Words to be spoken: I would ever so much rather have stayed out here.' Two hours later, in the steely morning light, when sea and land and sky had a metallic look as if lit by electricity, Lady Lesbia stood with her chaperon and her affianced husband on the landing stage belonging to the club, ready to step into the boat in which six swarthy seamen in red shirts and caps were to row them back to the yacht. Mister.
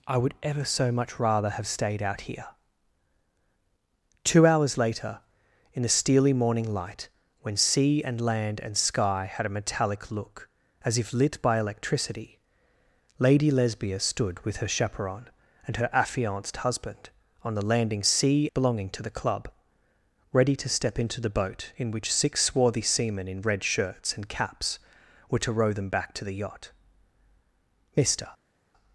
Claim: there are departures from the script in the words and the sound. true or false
true